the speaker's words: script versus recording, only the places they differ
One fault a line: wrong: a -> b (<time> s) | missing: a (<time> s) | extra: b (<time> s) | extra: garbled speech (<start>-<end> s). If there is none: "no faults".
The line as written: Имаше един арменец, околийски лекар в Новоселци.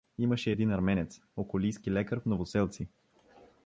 no faults